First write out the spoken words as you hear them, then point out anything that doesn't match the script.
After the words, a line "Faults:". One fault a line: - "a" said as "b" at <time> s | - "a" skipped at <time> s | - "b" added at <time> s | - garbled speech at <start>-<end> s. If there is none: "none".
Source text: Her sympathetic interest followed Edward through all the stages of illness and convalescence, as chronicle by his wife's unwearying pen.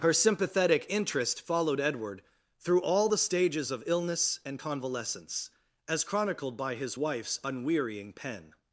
Her sympathetic interest followed Edward through all the stages of illness and convalescence, as chronicled by his wife's unwearying pen.
Faults:
- "chronicle" said as "chronicled" at 6.0 s